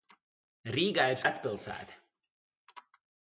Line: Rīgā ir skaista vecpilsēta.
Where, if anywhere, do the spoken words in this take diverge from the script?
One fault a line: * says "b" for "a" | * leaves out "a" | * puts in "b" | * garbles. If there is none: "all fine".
* leaves out "skaista"